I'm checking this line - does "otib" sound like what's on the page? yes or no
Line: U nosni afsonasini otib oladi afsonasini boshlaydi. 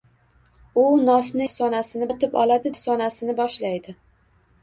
yes